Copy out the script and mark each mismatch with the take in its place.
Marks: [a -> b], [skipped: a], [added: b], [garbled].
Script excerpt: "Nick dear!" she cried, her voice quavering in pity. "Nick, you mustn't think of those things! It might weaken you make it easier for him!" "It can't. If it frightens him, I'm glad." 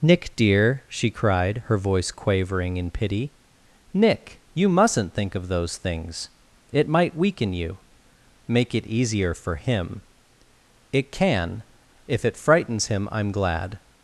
"Nick dear!" she cried, her voice quavering in pity. "Nick, you mustn't think of those things! It might weaken you make it easier for him!" "It [can't. -> can] If it frightens him, I'm glad."